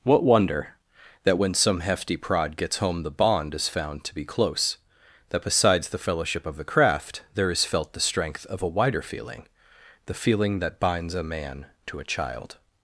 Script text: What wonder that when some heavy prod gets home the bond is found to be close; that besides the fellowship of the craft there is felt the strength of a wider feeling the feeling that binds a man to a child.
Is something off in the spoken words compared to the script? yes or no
yes